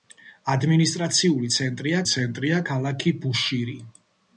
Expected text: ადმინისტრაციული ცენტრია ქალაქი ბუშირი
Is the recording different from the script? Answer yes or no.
yes